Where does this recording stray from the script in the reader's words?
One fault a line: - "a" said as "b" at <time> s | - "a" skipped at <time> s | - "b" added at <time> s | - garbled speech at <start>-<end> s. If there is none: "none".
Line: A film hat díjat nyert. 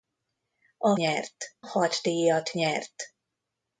- "film" said as "nyert" at 0.9 s